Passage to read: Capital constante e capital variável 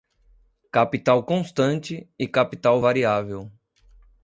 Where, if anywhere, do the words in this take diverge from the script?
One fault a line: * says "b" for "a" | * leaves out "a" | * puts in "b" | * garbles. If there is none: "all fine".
all fine